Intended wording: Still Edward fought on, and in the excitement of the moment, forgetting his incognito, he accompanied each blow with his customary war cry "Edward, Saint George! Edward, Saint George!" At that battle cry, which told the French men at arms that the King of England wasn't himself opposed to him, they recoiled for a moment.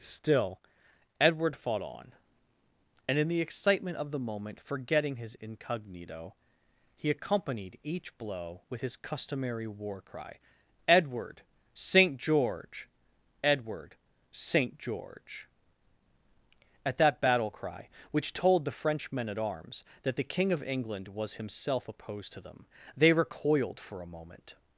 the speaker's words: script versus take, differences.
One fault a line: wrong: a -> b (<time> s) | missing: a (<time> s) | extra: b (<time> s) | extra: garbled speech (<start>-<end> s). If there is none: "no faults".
wrong: wasn't -> was (21.1 s)
wrong: him -> them (22.4 s)